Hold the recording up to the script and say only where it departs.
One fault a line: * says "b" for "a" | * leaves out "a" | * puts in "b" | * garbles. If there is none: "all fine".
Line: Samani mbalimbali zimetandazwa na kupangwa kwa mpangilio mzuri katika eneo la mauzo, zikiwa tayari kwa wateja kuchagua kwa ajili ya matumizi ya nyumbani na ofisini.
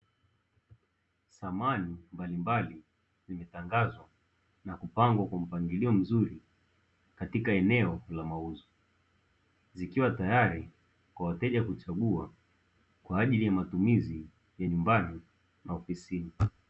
all fine